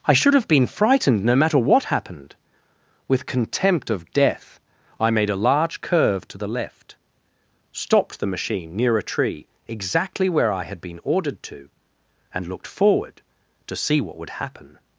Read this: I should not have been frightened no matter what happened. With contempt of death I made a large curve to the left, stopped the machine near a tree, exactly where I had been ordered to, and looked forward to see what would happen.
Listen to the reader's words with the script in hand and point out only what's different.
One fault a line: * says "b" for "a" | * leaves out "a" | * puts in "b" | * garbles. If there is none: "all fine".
* leaves out "not"